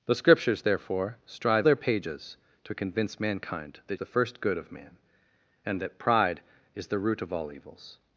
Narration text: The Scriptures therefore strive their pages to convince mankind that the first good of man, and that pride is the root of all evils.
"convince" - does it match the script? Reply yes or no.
yes